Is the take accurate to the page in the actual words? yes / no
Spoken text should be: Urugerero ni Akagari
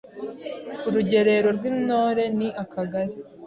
no